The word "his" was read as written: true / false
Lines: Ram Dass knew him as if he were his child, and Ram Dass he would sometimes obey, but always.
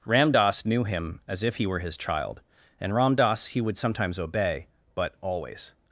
true